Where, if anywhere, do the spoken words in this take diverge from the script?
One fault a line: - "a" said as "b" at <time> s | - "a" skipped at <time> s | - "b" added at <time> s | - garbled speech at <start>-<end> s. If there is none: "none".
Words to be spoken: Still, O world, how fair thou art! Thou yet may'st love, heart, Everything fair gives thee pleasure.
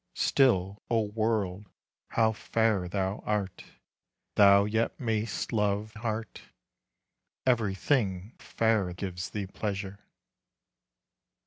none